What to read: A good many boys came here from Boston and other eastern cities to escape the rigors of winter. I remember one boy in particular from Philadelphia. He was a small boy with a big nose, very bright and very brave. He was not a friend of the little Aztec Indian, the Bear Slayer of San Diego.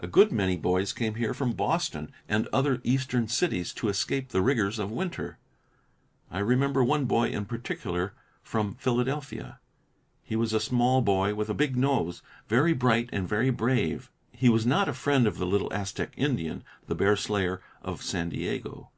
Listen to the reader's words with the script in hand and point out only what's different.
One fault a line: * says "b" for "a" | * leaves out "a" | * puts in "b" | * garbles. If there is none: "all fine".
all fine